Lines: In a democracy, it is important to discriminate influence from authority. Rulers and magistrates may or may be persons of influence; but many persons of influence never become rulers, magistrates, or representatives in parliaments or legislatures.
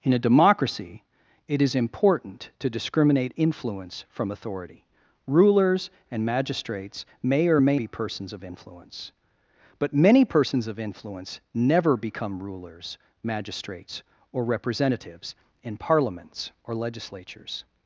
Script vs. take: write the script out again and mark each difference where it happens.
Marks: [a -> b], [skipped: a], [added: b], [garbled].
In a democracy, it is important to discriminate influence from authority. Rulers and magistrates may or may be persons of influence; but many persons of influence never become rulers, magistrates, or representatives in parliaments or legislatures.